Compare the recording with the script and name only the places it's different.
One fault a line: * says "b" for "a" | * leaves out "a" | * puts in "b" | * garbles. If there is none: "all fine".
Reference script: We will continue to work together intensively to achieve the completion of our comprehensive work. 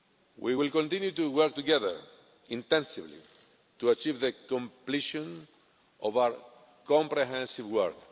all fine